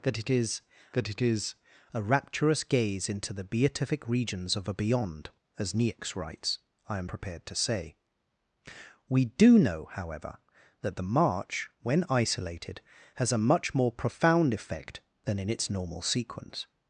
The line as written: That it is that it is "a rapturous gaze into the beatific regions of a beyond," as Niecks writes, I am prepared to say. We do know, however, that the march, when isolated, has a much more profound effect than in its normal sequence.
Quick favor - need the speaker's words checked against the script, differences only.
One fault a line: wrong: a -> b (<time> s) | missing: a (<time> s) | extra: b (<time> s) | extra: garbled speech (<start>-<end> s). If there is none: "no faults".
no faults